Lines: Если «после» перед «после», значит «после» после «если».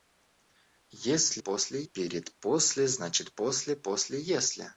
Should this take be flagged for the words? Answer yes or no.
no